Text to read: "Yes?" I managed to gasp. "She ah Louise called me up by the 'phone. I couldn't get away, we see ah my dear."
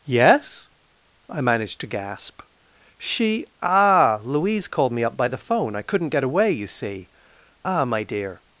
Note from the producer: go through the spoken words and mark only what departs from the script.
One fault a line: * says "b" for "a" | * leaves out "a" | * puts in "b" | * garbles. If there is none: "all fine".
* says "you" for "we"